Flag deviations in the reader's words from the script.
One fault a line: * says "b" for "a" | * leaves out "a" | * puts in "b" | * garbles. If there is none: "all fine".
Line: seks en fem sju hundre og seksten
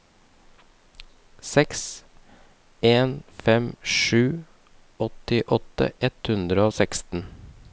* puts in "åttiåtte ett"